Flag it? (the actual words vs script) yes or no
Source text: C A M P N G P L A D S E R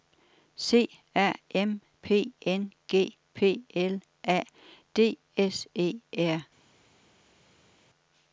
no